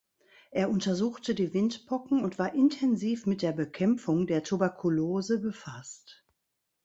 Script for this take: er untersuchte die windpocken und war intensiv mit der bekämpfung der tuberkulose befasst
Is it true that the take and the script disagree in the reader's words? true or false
false